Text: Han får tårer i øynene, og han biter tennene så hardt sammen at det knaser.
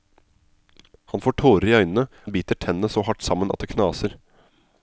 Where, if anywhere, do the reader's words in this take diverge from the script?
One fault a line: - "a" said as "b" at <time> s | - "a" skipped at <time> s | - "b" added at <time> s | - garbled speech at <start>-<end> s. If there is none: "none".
- "og" skipped at 2.1 s